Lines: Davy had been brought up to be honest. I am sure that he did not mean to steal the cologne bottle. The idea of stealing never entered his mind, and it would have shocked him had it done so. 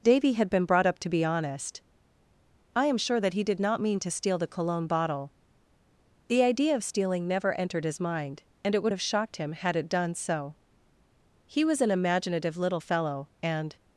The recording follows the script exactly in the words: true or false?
false